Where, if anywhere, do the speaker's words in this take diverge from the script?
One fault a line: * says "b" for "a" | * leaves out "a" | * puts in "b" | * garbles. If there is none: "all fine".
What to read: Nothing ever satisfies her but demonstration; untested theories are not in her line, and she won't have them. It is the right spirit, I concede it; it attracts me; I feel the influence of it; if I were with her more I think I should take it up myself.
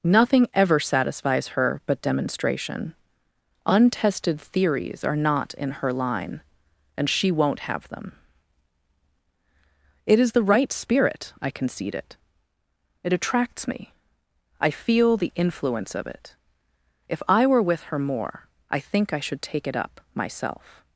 all fine